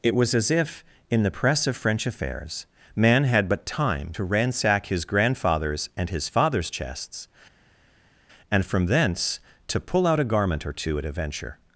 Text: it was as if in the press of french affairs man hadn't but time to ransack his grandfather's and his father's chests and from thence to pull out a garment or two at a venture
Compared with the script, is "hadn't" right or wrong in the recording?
wrong